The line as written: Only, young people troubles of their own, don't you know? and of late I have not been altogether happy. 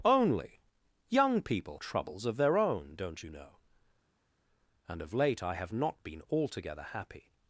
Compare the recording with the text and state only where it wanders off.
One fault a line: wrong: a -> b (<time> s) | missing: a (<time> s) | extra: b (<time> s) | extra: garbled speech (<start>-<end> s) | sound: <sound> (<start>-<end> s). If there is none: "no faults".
no faults